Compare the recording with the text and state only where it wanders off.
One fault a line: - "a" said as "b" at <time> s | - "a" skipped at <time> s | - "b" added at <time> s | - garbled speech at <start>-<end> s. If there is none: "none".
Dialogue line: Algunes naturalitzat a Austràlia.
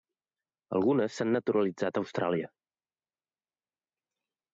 - "s'han" added at 1.2 s